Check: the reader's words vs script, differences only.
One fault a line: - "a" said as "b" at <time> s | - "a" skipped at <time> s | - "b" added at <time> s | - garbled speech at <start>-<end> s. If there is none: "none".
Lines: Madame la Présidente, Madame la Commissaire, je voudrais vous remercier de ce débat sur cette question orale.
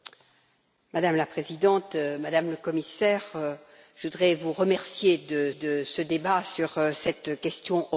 - "de" added at 5.5 s